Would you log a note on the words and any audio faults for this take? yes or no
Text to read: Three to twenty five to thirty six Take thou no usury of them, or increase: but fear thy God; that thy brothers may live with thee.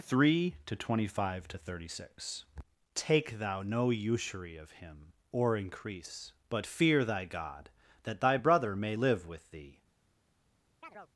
yes